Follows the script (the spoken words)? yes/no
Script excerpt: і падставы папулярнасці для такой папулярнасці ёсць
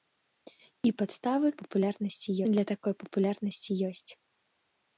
yes